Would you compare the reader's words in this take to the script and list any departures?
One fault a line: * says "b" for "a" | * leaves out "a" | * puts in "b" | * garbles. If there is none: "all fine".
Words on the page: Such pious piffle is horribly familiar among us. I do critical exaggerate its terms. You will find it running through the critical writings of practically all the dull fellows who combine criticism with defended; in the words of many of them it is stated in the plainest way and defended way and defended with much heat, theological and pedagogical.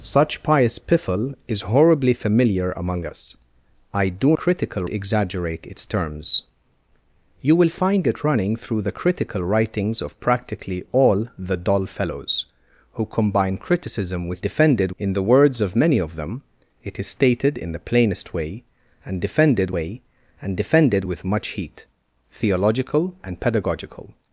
all fine